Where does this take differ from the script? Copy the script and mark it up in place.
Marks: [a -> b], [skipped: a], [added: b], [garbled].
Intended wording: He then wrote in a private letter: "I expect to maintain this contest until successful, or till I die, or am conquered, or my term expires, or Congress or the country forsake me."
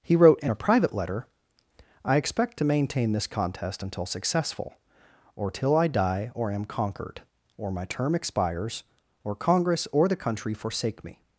He [skipped: then] wrote in a private letter: "I expect to maintain this contest until successful, or till I die, or am conquered, or my term expires, or Congress or the country forsake me."